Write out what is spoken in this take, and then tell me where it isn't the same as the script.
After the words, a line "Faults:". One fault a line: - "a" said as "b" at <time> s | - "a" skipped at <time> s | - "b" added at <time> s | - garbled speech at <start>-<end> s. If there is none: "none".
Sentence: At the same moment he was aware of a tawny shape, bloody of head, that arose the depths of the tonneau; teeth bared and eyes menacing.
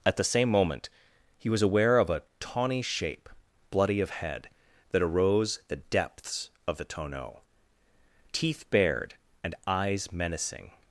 At the same moment he was aware of a tawny shape, bloody of head, that arose the depths of the tonneau; teeth bared and eyes menacing.
Faults:
none